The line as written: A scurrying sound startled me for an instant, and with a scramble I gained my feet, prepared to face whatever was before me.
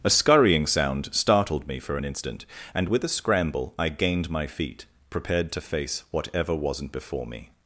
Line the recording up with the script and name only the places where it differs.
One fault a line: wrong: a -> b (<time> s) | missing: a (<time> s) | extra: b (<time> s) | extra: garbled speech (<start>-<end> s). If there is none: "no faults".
wrong: was -> wasn't (6.5 s)